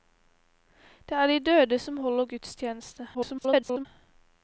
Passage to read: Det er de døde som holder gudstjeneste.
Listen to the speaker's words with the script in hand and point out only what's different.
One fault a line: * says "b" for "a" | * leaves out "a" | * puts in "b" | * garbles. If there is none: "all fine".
* garbles